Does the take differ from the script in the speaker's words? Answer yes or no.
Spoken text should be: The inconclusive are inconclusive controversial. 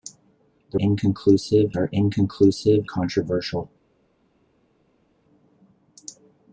no